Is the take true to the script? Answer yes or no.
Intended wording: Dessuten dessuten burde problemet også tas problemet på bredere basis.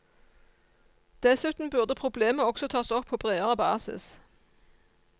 no